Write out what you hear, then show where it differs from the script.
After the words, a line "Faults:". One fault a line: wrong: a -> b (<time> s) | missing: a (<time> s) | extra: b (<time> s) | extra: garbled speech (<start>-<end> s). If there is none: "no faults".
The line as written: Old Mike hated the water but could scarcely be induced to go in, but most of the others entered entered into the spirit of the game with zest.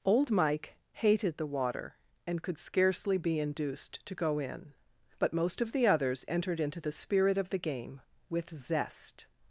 Old Mike hated the water and could scarcely be induced to go in, but most of the others entered into the spirit of the game with zest.
Faults:
wrong: but -> and (2.2 s)
missing: entered (6.6 s)